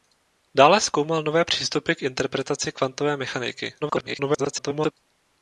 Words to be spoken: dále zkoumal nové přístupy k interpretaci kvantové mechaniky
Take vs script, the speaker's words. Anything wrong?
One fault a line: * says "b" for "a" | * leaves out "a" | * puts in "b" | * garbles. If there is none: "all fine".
* garbles